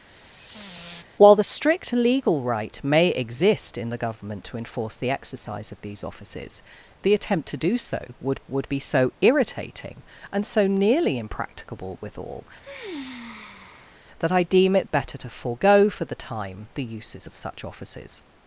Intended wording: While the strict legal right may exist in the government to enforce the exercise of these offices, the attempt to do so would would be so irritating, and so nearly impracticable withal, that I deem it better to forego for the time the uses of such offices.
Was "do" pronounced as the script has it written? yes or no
yes